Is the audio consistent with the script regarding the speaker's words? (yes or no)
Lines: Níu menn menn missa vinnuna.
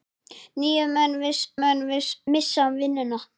yes